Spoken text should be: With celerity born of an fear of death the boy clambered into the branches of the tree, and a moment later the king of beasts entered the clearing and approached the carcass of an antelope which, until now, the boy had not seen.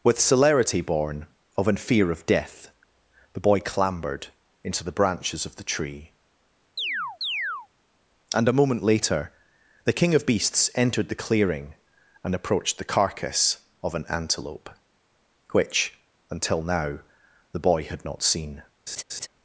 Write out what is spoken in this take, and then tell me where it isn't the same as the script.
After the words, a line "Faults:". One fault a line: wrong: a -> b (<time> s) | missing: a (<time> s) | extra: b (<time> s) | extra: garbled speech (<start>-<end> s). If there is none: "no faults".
With celerity born of an fear of death the boy clambered into the branches of the tree, and a moment later the king of beasts entered the clearing and approached the carcass of an antelope which, until now, the boy had not seen.
Faults:
no faults